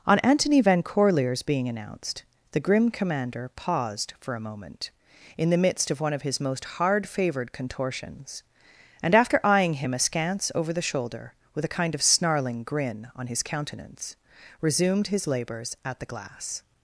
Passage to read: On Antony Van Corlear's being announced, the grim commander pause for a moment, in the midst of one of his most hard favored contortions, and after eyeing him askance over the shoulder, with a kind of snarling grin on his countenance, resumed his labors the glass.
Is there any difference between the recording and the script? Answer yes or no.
yes